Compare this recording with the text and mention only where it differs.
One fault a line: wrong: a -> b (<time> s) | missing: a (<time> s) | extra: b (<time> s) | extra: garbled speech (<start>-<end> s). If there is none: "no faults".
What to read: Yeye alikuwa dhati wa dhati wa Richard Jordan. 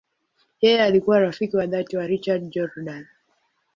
wrong: dhati -> rafiki (1.2 s)